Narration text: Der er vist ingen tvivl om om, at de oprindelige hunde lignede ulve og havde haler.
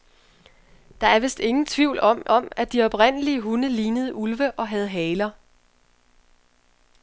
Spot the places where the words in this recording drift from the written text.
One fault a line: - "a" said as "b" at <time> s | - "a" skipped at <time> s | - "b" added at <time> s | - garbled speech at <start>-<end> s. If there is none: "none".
none